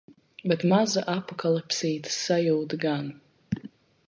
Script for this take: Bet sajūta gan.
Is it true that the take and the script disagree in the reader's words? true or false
true